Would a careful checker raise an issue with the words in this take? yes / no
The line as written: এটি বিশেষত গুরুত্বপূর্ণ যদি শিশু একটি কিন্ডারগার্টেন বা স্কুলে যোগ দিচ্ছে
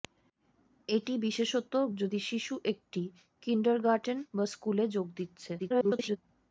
yes